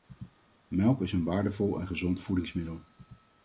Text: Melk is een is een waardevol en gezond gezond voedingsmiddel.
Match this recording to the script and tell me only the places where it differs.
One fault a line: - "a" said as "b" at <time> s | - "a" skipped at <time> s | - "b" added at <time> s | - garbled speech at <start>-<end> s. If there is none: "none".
- "is een" skipped at 1.2 s
- "gezond" skipped at 2.2 s